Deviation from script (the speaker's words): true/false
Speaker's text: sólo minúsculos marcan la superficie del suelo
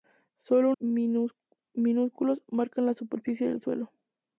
false